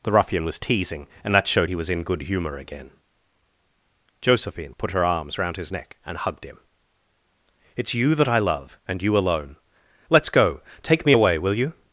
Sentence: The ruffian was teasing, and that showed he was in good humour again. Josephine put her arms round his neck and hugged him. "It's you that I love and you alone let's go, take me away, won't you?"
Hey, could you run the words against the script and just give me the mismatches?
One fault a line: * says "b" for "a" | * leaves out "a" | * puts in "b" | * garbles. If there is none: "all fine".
* says "will" for "won't"